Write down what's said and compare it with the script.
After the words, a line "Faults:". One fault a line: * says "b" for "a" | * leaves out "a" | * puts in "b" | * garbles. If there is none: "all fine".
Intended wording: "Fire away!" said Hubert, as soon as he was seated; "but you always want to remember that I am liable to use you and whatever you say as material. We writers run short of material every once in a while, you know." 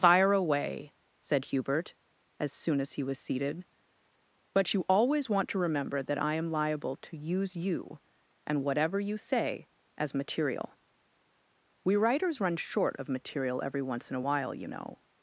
"Fire away!" said Hubert, as soon as he was seated; "but you always want to remember that I am liable to use you and whatever you say as material. We writers run short of material every once in a while, you know."
Faults:
all fine